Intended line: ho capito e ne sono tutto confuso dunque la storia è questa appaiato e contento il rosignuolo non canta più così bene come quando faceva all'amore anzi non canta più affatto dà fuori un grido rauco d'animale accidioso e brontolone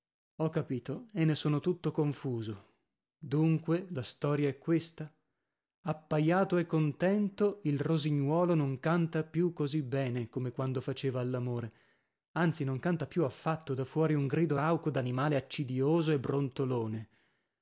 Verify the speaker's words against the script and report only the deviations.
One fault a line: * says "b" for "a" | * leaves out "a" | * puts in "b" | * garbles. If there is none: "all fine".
all fine